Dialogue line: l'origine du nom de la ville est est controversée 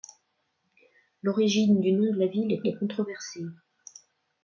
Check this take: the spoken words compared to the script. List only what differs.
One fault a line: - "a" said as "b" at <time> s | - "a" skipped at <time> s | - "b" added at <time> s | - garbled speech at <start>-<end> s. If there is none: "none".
none